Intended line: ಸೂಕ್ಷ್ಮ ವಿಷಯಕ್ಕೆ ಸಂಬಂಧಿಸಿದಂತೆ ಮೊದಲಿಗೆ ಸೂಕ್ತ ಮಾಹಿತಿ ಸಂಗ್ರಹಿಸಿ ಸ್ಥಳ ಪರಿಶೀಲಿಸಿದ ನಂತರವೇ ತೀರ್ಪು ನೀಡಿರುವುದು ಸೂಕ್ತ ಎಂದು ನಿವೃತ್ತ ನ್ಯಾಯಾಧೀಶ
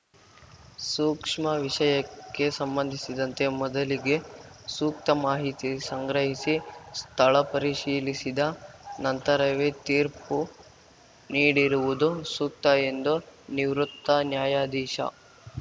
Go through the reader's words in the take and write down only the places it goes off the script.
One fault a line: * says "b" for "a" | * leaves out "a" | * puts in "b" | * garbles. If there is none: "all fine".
all fine